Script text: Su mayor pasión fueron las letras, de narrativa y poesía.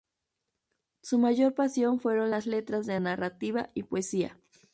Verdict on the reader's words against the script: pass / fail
pass